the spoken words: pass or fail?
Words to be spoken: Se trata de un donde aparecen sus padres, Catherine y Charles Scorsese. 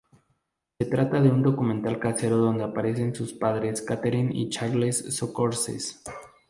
fail